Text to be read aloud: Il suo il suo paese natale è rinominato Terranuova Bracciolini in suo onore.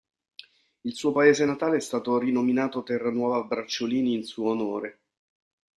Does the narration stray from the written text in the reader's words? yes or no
yes